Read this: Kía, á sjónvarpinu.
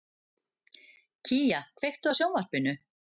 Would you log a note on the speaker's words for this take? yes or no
yes